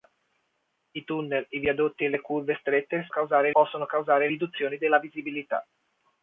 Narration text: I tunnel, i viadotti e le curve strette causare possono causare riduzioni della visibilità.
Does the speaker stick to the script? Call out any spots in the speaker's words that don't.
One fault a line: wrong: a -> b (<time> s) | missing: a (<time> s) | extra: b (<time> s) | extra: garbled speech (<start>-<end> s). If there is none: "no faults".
no faults